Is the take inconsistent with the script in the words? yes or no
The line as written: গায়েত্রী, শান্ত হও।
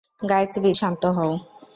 no